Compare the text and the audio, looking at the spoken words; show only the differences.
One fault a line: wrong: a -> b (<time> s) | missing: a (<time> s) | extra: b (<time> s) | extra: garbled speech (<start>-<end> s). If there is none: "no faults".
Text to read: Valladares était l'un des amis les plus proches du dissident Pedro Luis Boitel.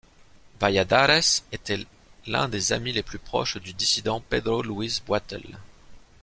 no faults